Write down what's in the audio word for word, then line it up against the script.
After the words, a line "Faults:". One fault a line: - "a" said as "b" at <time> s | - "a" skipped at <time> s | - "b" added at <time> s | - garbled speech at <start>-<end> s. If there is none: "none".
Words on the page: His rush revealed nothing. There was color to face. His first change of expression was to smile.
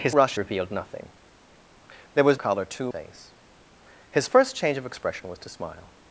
His rush revealed nothing. There was color to face. His first change of expression was to smile.
Faults:
none